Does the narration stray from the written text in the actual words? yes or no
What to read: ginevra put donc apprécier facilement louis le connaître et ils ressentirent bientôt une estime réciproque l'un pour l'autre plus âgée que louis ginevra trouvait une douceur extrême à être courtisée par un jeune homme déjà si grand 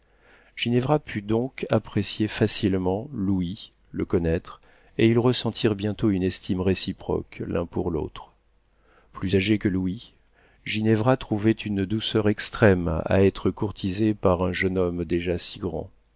no